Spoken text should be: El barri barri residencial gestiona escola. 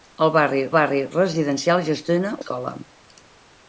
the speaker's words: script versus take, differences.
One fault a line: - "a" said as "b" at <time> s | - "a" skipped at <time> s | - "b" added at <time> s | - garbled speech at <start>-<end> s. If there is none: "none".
none